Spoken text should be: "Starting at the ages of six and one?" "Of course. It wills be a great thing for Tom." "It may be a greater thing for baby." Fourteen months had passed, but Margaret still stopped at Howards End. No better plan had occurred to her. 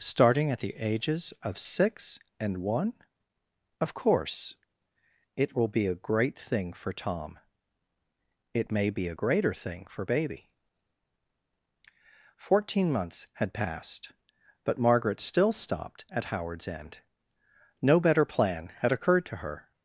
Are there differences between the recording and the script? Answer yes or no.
yes